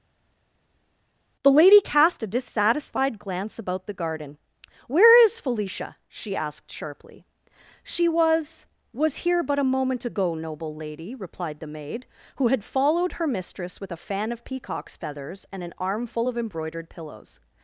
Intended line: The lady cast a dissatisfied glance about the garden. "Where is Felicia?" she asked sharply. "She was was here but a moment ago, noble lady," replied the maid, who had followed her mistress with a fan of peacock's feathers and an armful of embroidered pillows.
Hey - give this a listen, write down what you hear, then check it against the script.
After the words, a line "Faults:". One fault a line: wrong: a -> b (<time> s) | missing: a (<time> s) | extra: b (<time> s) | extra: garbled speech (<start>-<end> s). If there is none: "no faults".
The lady cast a dissatisfied glance about the garden. "Where is Felicia?" she asked sharply. "She was was here but a moment ago, noble lady," replied the maid, who had followed her mistress with a fan of peacock's feathers and an armful of embroidered pillows.
Faults:
no faults